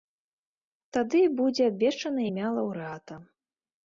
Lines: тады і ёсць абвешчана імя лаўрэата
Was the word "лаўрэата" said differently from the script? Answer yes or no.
no